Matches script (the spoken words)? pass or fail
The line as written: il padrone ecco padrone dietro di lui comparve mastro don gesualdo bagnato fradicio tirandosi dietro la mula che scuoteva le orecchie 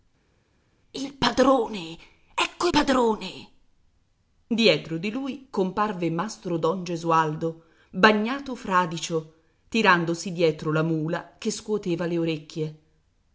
pass